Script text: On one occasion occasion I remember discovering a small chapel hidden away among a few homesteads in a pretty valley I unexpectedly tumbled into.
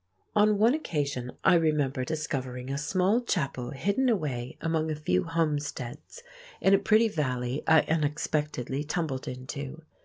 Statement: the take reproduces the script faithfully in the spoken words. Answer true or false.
false